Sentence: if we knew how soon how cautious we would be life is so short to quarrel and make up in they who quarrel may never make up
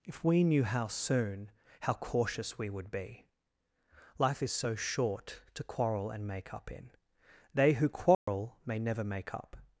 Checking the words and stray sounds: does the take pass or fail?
fail